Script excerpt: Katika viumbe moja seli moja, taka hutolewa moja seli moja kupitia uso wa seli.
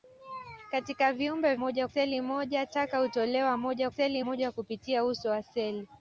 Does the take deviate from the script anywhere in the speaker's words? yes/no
no